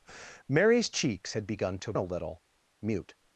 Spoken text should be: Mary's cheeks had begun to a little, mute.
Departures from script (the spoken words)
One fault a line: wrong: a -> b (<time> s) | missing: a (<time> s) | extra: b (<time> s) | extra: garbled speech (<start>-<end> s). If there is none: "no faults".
no faults